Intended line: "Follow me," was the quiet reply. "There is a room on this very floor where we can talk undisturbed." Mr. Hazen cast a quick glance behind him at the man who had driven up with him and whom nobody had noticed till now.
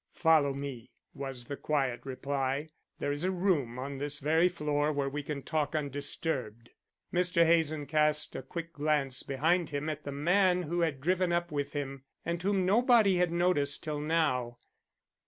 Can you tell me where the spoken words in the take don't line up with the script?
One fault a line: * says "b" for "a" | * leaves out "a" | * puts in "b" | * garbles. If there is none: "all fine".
all fine